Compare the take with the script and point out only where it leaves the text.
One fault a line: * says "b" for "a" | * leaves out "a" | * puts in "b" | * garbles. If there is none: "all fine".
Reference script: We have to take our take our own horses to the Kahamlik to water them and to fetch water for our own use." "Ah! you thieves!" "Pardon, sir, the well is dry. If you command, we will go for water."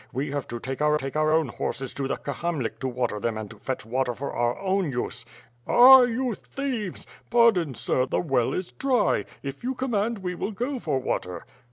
all fine